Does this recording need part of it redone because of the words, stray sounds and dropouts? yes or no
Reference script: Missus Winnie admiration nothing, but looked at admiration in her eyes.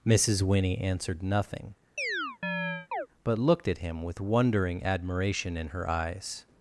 yes